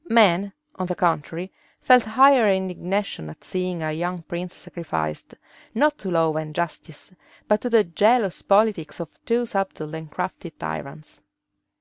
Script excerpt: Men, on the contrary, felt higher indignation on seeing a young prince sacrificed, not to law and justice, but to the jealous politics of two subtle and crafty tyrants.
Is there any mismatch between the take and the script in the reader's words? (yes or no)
yes